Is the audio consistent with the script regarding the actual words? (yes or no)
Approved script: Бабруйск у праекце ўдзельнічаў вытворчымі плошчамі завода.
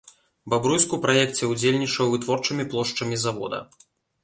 yes